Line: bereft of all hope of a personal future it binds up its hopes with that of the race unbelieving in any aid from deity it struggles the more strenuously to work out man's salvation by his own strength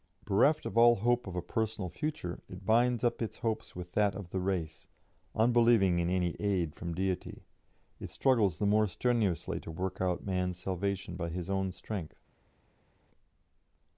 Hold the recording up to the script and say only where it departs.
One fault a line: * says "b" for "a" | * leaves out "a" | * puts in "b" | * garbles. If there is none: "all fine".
all fine